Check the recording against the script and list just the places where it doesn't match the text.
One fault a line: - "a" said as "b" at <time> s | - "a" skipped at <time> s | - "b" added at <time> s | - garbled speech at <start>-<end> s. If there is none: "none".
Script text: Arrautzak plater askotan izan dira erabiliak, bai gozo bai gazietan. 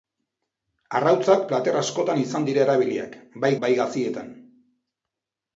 - "gozo" skipped at 3.5 s